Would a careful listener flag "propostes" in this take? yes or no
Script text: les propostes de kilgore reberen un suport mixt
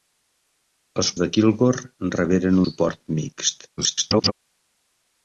yes